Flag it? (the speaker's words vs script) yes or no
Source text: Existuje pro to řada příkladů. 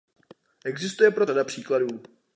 yes